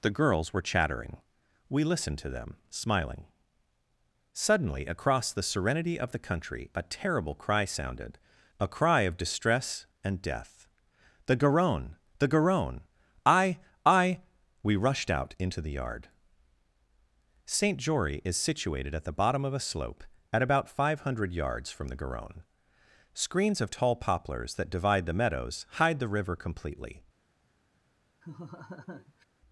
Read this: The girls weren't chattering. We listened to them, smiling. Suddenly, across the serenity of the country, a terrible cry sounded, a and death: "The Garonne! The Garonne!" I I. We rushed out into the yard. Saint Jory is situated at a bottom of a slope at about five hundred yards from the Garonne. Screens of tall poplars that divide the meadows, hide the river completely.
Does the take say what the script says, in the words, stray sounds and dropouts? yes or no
no